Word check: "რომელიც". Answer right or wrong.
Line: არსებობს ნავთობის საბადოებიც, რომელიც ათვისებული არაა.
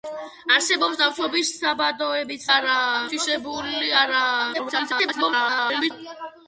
wrong